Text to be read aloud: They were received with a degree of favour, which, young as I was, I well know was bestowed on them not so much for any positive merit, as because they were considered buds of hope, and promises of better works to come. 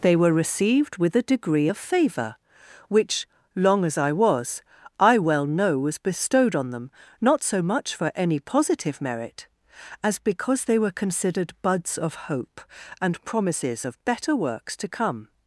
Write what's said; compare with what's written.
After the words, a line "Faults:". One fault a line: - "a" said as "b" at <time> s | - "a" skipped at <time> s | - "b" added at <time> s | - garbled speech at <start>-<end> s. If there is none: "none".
They were received with a degree of favour, which, long as I was, I well know was bestowed on them not so much for any positive merit, as because they were considered buds of hope, and promises of better works to come.
Faults:
- "young" said as "long" at 3.6 s